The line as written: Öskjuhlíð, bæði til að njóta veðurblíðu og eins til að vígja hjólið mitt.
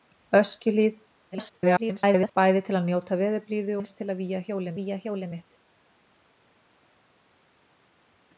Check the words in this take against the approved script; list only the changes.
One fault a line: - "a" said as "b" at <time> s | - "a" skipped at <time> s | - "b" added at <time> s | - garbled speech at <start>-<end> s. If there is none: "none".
- garbled speech at 1.3-2.3 s
- "og" skipped at 3.8 s
- "vígja hjólið" added at 4.8 s